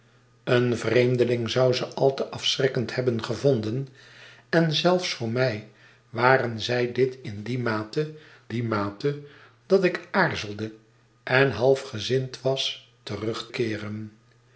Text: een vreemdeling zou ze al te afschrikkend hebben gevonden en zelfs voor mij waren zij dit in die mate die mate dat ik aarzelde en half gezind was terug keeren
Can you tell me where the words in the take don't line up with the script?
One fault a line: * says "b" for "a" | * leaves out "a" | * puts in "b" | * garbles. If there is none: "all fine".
all fine